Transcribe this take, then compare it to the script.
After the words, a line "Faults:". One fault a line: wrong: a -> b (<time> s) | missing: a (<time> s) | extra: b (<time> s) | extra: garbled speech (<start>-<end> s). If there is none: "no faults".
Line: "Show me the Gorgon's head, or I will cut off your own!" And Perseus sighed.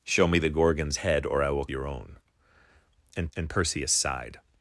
"Show me the Gorgon's head, or I will your own!" And and Perseus sighed.
Faults:
missing: cut off (1.7 s)
extra: and (3.3 s)